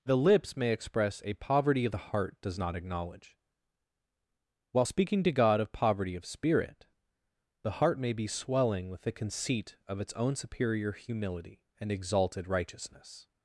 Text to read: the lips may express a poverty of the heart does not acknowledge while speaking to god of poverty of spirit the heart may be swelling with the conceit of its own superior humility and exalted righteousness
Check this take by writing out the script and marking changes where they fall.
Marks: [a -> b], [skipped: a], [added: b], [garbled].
the lips may express a poverty of the heart does not acknowledge while speaking to god of poverty of spirit the heart may be swelling with the conceit of its own superior humility and exalted righteousness